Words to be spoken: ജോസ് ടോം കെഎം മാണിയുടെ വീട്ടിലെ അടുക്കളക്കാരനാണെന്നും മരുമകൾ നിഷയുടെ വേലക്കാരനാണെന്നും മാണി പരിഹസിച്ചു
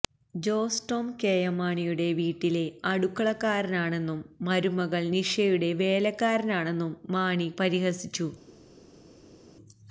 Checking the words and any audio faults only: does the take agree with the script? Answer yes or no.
yes